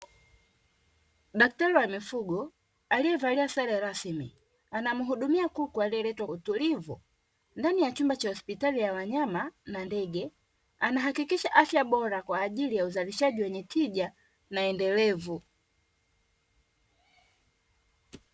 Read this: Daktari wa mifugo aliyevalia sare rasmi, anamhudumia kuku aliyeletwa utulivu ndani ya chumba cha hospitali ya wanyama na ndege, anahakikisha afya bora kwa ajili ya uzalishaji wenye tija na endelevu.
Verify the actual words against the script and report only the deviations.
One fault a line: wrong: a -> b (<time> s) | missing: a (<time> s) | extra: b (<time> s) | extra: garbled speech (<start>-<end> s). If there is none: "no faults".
no faults